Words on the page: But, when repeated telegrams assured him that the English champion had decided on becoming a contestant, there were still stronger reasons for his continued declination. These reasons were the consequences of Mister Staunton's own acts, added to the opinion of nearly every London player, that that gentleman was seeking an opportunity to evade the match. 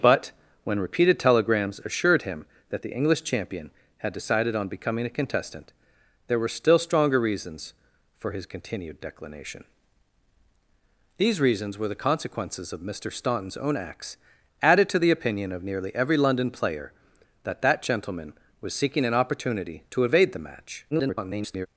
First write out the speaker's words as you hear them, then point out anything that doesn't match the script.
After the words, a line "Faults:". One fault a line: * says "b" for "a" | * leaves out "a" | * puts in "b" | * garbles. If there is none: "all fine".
But, when repeated telegrams assured him that the English champion had decided on becoming a contestant, there were still stronger reasons for his continued declination. These reasons were the consequences of Mister Staunton's own acts, added to the opinion of nearly every London player, that that gentleman was seeking an opportunity to evade the match. [garbled]
Faults:
* garbles